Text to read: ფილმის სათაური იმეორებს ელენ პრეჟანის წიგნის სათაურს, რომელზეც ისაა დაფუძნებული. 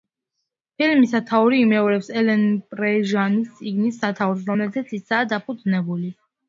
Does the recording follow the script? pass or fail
pass